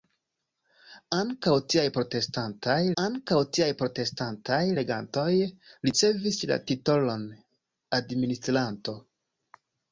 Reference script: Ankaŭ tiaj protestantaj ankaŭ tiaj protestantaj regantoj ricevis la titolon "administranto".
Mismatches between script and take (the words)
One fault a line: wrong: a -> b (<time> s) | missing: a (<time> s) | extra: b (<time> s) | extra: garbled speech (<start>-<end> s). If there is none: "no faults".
no faults